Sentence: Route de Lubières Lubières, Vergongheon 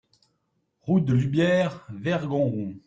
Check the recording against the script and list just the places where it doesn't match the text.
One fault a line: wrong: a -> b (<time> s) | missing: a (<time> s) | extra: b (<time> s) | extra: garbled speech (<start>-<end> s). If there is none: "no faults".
missing: Lubières (1.8 s)